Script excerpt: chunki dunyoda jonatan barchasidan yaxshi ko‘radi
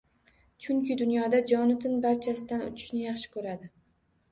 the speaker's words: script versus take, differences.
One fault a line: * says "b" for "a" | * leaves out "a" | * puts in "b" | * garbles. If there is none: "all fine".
* puts in "uchishni"